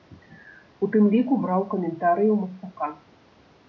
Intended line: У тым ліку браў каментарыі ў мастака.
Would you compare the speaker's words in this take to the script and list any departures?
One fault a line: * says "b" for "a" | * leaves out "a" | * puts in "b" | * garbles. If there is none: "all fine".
all fine